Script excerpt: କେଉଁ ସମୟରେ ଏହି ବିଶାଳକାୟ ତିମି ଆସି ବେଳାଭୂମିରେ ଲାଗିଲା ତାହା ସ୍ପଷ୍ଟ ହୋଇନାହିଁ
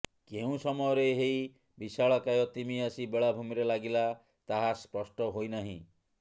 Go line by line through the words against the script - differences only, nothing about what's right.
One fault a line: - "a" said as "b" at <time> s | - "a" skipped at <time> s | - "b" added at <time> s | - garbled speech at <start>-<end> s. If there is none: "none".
none